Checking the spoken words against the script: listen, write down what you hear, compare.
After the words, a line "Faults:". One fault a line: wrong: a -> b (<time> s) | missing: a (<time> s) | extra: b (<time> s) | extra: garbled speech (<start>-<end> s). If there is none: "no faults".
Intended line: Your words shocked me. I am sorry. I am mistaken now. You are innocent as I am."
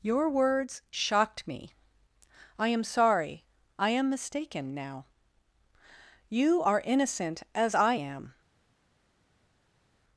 Your words shocked me. I am sorry. I am mistaken now. You are innocent as I am."
Faults:
no faults